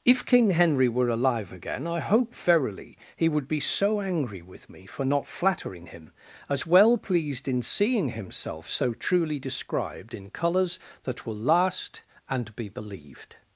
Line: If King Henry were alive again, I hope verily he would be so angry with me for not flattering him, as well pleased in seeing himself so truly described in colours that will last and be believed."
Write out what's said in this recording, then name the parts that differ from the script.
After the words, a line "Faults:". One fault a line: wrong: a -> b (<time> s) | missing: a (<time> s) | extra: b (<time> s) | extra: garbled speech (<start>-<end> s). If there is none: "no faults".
If King Henry were alive again, I hope verily he would be so angry with me for not flattering him, as well pleased in seeing himself so truly described in colours that will last and be believed."
Faults:
no faults